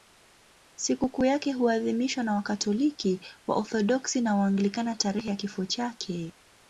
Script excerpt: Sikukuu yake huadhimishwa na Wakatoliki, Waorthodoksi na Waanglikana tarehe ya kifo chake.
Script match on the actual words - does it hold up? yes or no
yes